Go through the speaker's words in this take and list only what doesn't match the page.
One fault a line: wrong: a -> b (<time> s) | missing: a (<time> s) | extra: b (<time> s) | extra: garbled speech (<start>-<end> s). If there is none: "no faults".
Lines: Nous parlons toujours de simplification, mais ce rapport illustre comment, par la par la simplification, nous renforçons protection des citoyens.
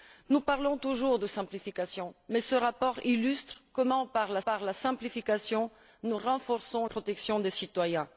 no faults